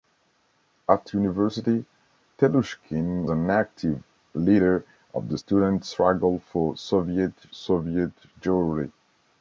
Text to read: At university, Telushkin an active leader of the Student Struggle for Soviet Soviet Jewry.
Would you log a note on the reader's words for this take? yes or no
no